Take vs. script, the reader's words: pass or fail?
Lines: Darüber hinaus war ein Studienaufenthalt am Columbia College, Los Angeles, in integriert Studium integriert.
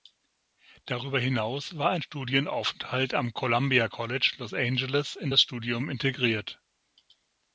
fail